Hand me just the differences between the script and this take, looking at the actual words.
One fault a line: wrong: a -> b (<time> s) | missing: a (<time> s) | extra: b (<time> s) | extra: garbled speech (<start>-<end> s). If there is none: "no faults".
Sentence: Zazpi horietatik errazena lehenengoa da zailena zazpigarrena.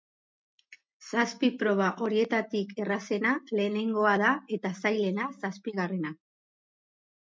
extra: proba (1.6 s)
extra: eta (4.6 s)